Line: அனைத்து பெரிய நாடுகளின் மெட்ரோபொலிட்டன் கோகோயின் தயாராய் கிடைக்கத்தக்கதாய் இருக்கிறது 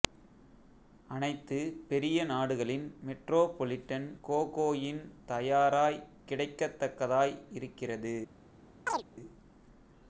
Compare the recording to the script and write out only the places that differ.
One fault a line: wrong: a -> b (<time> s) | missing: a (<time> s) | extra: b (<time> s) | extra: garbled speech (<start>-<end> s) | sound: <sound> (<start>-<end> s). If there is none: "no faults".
sound: chirp (8.9-9.0 s)